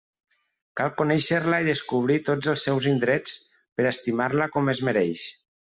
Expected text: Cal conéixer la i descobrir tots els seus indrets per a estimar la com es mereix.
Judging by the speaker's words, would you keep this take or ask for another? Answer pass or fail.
pass